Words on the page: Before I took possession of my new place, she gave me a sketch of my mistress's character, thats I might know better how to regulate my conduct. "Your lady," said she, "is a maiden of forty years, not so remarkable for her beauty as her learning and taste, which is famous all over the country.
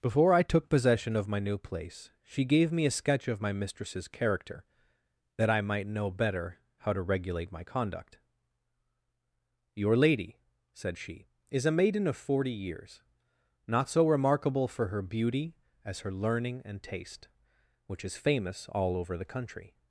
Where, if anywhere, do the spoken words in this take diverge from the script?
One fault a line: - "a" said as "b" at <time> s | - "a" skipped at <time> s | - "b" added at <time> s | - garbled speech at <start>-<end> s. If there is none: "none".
- "thats" said as "that" at 5.4 s